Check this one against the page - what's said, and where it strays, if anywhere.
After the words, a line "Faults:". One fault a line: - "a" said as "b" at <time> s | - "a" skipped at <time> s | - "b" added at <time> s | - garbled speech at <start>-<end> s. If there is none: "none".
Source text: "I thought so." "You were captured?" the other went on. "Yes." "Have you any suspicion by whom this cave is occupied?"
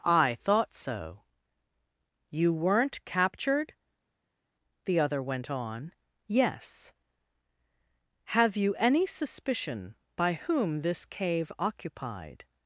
"I thought so." "You weren't captured?" the other went on. "Yes." "Have you any suspicion by whom this cave occupied?"
Faults:
- "were" said as "weren't" at 2.5 s
- "is" skipped at 11.5 s